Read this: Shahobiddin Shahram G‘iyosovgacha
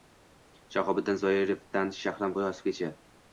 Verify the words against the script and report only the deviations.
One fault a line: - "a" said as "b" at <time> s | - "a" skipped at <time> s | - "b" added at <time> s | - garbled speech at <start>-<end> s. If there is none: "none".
- "Zoirovdan" added at 1.2 s